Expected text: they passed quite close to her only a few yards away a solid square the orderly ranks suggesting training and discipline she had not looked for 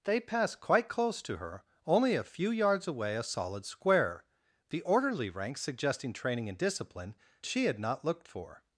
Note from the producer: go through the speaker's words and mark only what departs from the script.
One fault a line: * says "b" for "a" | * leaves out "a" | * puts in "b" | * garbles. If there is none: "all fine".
all fine